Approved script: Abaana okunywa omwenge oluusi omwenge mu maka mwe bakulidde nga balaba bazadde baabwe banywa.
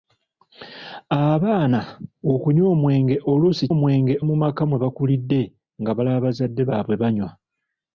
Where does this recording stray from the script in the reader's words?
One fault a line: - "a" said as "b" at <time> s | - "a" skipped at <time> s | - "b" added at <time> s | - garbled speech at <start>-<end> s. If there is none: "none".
none